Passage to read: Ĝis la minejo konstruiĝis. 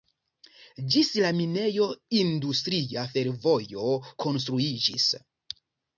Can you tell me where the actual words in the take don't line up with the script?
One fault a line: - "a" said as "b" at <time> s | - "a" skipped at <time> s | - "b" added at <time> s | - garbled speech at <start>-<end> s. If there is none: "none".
- "industria fervojo" added at 2.2 s